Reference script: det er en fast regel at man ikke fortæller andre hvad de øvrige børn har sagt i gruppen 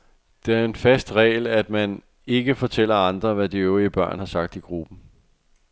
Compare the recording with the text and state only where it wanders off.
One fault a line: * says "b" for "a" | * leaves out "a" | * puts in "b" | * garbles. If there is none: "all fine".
all fine